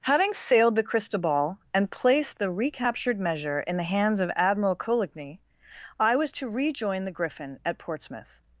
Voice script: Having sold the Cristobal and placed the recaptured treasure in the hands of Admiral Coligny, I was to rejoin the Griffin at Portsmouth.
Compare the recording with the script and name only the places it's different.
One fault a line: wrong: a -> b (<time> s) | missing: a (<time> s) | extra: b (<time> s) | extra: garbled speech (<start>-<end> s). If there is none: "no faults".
wrong: sold -> sailed (0.3 s)
wrong: treasure -> measure (3.2 s)